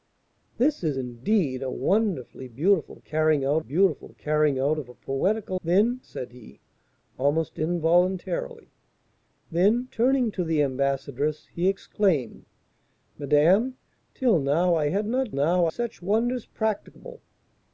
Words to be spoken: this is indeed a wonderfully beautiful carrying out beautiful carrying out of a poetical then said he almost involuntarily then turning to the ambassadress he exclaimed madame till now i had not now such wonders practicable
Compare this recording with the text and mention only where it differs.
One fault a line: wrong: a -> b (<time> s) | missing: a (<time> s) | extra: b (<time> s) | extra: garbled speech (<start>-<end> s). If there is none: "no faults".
no faults